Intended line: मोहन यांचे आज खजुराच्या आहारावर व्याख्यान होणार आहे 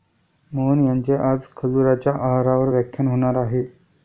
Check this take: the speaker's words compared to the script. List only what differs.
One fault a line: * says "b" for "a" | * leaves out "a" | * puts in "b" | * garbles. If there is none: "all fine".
all fine